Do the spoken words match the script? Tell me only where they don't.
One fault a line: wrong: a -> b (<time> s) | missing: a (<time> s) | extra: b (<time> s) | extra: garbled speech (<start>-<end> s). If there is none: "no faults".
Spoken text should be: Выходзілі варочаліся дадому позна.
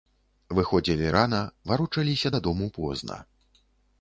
extra: рана (1.2 s)